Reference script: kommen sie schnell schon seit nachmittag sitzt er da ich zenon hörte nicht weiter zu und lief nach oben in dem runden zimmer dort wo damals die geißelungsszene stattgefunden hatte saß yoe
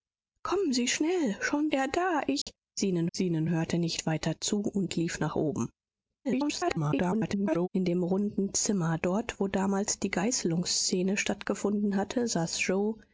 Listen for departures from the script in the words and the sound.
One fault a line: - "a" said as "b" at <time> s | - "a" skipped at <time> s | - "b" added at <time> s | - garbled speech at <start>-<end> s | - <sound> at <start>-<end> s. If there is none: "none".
- "seit nachmittag sitzt" skipped at 1.7 s
- dropout at 2.4-2.5 s
- "zenon" added at 3.1 s
- garbled speech at 6.2-7.7 s